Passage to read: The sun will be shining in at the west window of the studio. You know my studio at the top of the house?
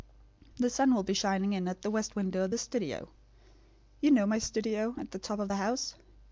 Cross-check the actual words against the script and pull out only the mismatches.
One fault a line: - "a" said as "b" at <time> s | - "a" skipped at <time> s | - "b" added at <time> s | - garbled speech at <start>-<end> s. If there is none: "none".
none